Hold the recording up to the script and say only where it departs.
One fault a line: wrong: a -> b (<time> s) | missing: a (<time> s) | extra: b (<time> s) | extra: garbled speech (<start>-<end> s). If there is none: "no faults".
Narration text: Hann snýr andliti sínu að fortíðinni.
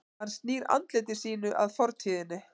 no faults